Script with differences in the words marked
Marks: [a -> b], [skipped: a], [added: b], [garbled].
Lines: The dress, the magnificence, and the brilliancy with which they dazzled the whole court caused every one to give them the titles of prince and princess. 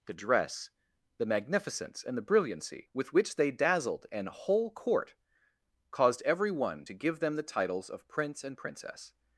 The dress, the magnificence, and the brilliancy with which they dazzled [the -> an] whole court caused every one to give them the titles of prince and princess.